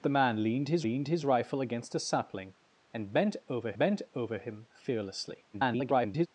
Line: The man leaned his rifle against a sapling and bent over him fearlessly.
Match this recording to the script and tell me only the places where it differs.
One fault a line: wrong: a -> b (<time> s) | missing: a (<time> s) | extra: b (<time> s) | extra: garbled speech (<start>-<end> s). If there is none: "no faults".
extra: leaned his (0.8 s)
extra: bent over (3.8 s)
extra: garbled speech (5.5-6.3 s)